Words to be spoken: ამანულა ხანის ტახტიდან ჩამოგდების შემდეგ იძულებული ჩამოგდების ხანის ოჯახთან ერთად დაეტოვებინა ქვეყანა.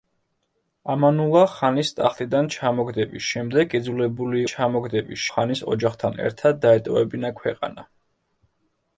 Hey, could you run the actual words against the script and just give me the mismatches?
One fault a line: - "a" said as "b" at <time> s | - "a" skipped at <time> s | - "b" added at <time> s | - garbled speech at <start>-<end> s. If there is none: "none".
none